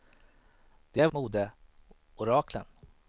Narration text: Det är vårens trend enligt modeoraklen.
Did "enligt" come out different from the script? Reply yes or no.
yes